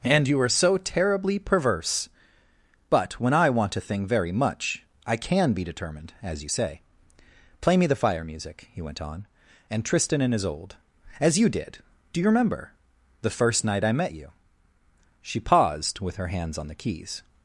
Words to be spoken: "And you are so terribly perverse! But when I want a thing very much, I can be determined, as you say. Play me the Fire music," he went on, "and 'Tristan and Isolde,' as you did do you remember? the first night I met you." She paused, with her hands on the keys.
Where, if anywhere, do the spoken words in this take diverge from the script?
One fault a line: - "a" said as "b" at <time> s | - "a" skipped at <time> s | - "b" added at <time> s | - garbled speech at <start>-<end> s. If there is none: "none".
none